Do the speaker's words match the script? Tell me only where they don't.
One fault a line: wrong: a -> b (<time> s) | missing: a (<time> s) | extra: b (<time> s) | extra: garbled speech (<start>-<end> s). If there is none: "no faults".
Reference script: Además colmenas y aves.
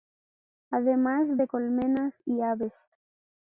extra: de (1.4 s)